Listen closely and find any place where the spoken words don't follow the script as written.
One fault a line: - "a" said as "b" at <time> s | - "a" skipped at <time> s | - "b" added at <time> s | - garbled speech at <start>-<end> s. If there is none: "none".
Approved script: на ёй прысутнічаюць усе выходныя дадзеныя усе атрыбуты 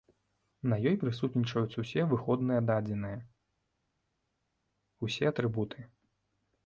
none